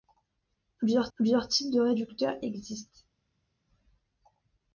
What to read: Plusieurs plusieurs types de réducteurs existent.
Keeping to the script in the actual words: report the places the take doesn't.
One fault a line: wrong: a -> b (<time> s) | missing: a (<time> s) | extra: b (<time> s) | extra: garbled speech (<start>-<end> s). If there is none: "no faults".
no faults